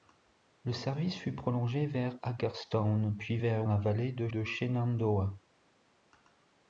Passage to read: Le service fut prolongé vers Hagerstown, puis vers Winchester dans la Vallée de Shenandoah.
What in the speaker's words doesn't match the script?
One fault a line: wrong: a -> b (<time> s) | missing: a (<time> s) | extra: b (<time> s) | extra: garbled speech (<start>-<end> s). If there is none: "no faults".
missing: Winchester dans (3.7 s)
extra: de (4.3 s)